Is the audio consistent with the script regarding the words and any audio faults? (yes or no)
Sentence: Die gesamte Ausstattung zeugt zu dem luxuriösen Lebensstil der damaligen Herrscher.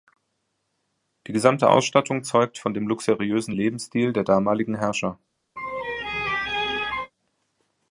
no